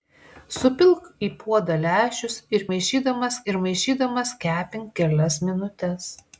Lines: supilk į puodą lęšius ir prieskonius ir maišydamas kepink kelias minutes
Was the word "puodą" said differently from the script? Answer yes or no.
no